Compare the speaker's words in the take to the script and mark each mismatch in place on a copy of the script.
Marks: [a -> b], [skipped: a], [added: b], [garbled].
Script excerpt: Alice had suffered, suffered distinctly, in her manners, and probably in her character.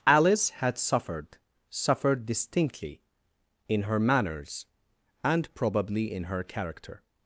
Alice had suffered, suffered distinctly, in her manners, and probably in her character.